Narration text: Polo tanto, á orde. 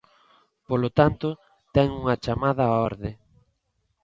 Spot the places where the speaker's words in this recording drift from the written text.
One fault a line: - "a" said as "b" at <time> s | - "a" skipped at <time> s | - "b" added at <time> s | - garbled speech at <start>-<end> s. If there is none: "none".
- "ten unha chamada" added at 1.8 s